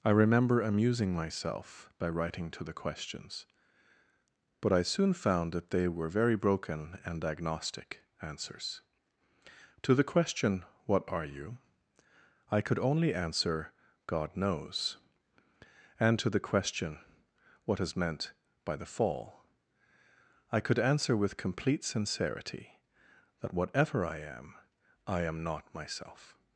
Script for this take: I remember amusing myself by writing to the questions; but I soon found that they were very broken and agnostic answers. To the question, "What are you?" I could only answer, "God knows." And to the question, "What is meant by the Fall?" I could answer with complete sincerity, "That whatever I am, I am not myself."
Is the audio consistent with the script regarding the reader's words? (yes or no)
yes